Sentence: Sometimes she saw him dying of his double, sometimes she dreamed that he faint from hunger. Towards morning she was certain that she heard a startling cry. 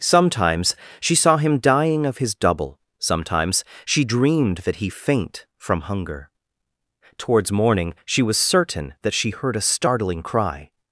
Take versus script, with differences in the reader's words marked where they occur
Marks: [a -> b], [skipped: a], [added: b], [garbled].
Sometimes she saw him dying of his double, sometimes she dreamed that he faint from hunger. Towards morning she was certain that she heard a startling cry.